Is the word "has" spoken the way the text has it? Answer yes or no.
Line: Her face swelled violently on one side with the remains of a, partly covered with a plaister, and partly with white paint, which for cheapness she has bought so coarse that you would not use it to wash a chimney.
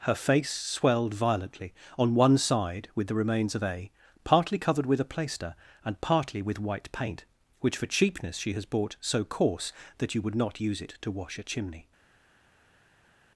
yes